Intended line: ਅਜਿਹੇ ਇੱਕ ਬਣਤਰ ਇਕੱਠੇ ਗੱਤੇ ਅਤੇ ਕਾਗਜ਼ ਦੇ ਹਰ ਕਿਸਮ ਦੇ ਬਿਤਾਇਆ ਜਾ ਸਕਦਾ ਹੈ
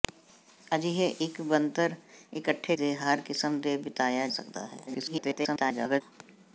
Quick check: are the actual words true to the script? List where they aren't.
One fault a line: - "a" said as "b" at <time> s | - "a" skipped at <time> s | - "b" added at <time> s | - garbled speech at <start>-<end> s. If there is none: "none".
- "ਗੱਤੇ ਅਤੇ ਕਾਗਜ਼" skipped at 2.8 s
- "ਜਾ" skipped at 4.3 s
- garbled speech at 4.9-6.0 s